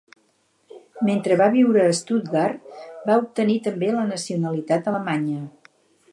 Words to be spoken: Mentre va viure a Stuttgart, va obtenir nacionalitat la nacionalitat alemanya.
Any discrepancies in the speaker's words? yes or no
yes